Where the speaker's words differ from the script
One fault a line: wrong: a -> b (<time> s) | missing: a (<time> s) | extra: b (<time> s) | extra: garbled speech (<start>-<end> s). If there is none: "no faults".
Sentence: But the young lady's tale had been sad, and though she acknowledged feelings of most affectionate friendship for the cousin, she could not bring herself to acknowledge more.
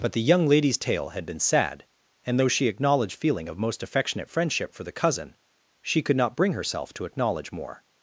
wrong: feelings -> feeling (3.1 s)